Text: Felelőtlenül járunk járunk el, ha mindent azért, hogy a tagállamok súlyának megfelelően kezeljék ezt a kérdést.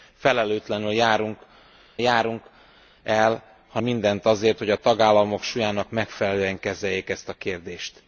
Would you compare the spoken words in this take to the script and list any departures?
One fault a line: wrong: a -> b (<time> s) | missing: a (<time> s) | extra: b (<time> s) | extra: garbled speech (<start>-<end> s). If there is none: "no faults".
no faults